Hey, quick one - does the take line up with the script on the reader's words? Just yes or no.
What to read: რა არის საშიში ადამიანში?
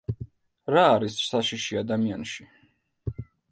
yes